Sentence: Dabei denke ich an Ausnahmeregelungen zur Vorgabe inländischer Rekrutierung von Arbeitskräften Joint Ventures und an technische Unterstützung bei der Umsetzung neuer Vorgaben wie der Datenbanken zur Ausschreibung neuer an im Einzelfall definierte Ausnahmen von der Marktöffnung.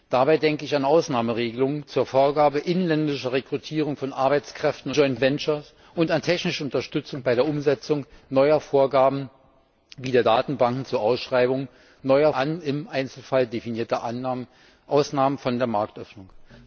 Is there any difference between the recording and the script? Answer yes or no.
no